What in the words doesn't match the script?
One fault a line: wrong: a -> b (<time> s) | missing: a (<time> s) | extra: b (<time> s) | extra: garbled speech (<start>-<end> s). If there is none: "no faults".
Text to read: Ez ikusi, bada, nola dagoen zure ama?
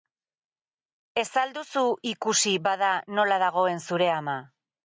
extra: al duzu (1.4 s)